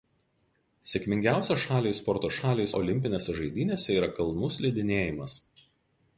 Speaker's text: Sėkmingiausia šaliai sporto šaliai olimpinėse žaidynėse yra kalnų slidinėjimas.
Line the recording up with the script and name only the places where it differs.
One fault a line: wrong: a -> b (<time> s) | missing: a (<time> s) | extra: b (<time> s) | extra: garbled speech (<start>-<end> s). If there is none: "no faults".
no faults